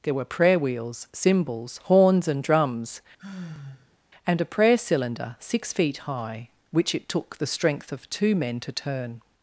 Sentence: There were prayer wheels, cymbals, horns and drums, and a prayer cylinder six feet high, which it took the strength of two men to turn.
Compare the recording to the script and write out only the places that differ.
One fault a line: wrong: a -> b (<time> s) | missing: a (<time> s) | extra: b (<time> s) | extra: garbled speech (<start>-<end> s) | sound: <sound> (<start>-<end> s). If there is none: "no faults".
sound: sigh (3.2-4.0 s)